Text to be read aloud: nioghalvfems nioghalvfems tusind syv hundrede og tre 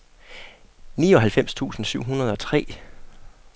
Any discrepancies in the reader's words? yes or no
yes